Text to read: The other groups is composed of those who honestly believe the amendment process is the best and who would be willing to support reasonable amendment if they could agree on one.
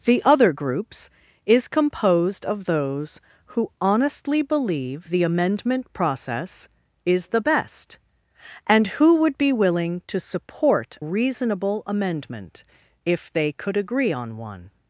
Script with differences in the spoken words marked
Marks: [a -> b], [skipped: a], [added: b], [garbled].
The other groups is composed of those who honestly believe the amendment process is the best and who would be willing to support reasonable amendment if they could agree on one.